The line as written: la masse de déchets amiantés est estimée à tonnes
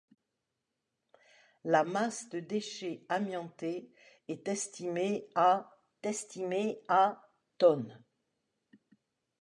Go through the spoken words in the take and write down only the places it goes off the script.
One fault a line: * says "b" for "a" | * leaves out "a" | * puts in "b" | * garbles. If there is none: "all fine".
* puts in "estimée à"